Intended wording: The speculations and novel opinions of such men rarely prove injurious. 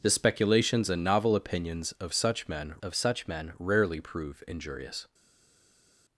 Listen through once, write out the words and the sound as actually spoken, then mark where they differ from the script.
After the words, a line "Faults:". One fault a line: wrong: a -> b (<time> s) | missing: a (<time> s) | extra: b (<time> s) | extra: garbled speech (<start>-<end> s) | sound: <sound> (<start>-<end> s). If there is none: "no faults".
The speculations and novel opinions of such men of such men rarely prove injurious.
Faults:
extra: of such men (2.8 s)